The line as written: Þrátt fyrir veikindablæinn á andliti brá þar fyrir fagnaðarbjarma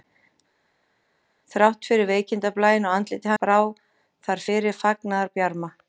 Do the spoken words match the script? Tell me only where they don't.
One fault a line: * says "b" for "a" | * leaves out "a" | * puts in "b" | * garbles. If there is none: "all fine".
all fine